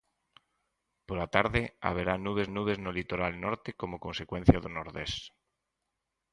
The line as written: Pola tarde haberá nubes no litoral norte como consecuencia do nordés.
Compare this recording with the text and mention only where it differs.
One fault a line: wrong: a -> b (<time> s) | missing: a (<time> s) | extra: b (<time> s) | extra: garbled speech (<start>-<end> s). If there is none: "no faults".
extra: nubes (2.6 s)